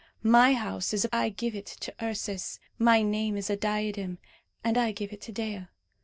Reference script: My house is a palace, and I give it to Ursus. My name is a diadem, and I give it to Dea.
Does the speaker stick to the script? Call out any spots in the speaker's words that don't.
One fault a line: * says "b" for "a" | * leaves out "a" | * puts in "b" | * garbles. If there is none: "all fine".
* leaves out "palace and"